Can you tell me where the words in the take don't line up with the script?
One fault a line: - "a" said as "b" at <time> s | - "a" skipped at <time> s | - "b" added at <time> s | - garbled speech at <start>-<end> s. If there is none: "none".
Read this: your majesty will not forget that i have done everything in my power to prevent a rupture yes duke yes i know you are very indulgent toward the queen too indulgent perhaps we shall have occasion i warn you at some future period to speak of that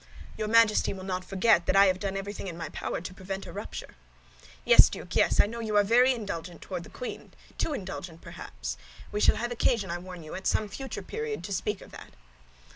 none